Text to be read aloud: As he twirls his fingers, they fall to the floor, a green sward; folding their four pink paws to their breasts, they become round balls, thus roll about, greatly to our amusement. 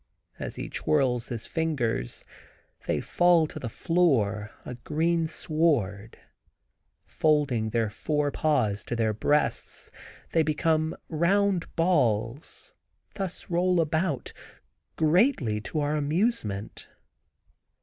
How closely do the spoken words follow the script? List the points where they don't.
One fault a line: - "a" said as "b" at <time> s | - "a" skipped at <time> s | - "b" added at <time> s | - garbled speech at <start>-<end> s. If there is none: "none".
- "pink" skipped at 8.3 s